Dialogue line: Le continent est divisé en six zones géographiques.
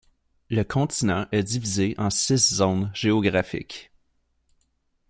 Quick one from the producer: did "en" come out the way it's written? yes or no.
yes